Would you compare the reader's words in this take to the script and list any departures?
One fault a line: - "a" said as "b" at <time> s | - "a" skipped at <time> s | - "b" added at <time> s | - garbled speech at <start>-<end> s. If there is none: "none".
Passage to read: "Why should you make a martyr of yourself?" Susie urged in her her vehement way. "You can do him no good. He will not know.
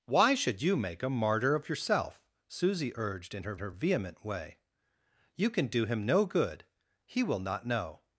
none